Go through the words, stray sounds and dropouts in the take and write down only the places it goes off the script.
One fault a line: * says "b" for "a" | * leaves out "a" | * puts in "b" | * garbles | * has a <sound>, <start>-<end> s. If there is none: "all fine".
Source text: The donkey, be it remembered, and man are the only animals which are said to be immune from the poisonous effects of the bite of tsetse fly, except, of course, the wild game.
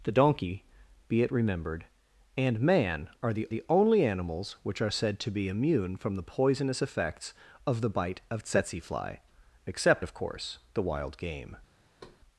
* puts in "the"
* has a thud, 12.0-12.2 s